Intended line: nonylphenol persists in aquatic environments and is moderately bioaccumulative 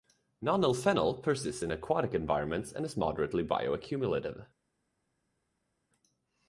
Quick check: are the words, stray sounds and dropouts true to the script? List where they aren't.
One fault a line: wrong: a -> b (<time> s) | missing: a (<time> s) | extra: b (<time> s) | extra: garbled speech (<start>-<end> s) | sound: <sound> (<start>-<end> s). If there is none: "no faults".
no faults